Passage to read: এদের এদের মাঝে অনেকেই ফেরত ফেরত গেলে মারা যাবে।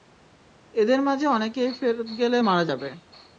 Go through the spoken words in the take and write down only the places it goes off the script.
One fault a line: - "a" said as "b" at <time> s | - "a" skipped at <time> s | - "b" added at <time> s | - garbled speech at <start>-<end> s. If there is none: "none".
- "এদের" skipped at 1.0 s
- "ফেরত" skipped at 2.1 s